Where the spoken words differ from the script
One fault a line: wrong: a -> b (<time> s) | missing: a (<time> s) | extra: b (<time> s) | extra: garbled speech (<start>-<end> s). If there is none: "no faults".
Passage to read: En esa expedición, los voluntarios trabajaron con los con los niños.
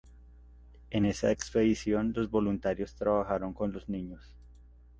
missing: con los (3.9 s)